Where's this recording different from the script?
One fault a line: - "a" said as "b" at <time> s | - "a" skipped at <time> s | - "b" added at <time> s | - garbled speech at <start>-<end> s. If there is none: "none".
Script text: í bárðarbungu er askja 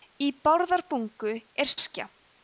none